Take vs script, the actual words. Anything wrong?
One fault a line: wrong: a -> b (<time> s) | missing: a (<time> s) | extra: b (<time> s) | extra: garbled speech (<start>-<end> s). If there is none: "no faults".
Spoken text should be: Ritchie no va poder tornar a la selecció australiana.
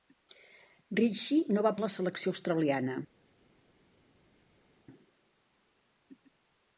missing: poder tornar (1.7 s)